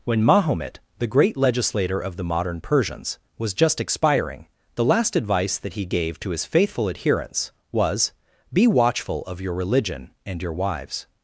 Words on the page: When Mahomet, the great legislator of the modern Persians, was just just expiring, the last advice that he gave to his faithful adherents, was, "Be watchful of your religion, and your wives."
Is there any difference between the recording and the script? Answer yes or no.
yes